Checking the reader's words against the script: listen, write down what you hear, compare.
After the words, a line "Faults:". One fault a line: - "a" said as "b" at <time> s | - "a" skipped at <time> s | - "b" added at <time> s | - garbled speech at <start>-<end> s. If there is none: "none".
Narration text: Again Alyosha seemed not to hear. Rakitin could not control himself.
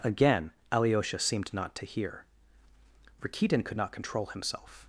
Again Alyosha seemed not to hear. Rakitin could not control himself.
Faults:
none